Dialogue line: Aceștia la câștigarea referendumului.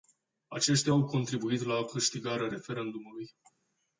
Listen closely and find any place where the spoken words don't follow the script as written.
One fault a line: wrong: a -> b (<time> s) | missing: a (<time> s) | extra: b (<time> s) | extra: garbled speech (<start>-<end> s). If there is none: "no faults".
extra: au contribuit (0.9 s)